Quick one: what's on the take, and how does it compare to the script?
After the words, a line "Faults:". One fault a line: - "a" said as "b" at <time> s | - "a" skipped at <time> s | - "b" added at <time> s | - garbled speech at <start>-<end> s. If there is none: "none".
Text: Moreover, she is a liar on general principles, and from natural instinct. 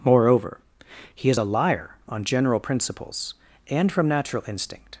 Moreover, he is a liar on general principles, and from natural instinct.
Faults:
- "she" said as "he" at 1.1 s